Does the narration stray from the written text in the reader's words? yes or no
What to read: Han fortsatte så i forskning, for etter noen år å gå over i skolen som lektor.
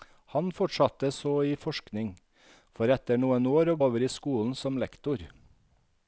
yes